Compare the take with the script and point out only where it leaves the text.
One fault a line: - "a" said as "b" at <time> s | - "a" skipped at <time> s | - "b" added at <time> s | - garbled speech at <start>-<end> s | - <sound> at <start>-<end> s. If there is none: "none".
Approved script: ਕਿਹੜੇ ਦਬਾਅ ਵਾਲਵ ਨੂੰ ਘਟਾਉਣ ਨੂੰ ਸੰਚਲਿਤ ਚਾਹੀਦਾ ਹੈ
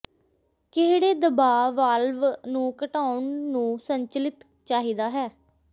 none